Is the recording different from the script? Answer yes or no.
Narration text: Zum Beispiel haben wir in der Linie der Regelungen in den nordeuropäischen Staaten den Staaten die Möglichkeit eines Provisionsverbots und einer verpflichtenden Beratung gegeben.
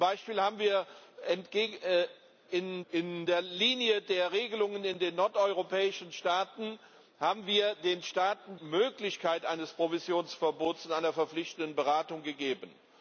yes